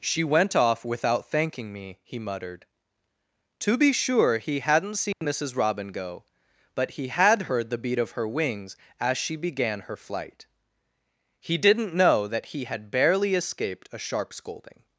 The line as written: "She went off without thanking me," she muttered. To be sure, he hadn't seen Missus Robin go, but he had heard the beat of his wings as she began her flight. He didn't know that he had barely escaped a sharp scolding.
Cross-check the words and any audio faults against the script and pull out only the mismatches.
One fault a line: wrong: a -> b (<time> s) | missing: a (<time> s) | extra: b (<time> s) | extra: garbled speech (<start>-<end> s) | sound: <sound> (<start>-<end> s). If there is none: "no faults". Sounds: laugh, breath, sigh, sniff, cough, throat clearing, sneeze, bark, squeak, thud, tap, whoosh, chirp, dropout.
wrong: she -> he (2.0 s)
sound: dropout (5.1-5.2 s)
wrong: his -> her (8.1 s)